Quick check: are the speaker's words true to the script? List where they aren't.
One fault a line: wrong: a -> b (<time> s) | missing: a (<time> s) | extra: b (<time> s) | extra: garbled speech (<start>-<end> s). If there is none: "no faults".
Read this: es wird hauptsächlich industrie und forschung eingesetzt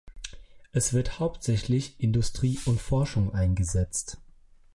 no faults